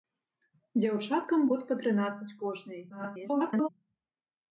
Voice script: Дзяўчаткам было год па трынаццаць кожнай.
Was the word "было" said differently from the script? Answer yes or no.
yes